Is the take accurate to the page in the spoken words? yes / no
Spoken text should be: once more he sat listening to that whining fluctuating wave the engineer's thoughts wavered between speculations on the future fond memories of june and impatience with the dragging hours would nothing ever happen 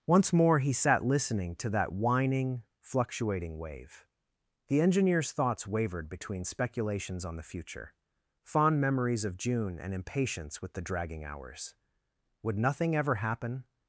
yes